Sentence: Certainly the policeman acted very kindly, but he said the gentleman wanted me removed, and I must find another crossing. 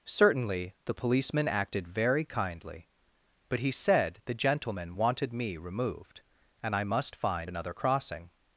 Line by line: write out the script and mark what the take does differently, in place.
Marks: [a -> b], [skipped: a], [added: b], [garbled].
Certainly the policeman acted very kindly, but he said the gentleman wanted me removed, and I must find another crossing.